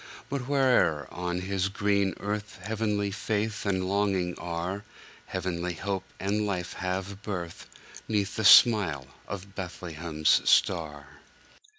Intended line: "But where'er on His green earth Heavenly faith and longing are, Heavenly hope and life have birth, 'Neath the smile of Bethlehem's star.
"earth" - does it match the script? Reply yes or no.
yes